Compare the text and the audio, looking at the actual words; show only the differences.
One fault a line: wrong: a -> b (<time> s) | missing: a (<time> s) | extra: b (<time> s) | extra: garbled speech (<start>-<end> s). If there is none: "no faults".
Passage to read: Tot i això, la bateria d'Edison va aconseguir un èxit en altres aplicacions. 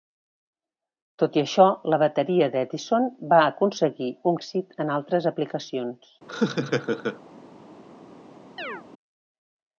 no faults